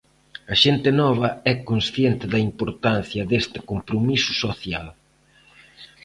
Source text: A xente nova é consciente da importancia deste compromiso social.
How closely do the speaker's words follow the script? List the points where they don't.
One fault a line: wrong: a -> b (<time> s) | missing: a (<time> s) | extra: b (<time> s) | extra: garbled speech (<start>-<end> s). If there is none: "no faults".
no faults